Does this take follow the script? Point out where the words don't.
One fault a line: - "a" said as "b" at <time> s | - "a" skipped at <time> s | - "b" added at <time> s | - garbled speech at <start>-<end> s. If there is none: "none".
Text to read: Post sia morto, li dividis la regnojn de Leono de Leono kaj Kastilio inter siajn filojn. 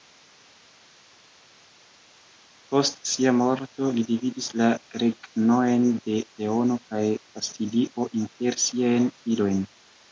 - "de Leono" skipped at 6.8 s